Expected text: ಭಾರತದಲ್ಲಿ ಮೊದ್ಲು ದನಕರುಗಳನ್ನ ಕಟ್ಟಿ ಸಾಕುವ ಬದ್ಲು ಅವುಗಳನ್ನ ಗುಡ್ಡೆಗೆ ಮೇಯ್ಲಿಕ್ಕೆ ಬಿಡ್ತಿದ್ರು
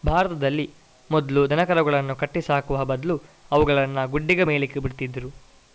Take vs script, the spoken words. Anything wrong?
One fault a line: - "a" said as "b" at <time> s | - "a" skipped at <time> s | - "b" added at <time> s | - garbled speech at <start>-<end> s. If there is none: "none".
none